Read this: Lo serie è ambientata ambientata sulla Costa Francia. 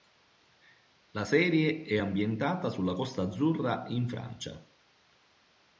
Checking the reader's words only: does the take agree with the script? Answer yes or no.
no